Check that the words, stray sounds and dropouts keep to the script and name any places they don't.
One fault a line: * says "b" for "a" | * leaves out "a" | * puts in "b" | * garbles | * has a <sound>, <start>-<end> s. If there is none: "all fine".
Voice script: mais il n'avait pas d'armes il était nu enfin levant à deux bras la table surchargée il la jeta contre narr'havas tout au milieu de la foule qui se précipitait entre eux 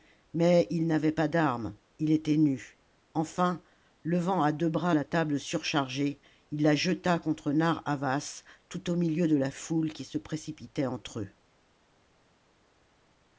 all fine